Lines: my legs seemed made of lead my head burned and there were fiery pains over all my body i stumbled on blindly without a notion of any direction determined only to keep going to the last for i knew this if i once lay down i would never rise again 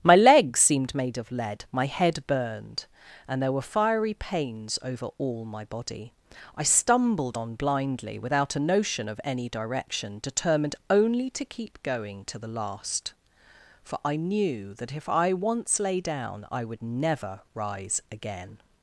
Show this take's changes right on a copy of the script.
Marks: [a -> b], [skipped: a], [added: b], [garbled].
my legs seemed made of lead my head burned and there were fiery pains over all my body i stumbled on blindly without a notion of any direction determined only to keep going to the last for i knew [this -> that] if i once lay down i would never rise again